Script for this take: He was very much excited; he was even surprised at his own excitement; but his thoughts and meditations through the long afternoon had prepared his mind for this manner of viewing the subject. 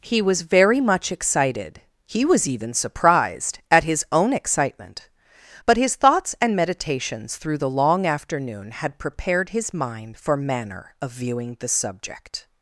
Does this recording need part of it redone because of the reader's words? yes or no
yes